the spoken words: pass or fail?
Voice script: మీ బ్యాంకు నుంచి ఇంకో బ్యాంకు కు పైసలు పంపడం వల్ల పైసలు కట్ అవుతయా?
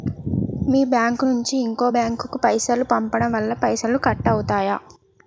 pass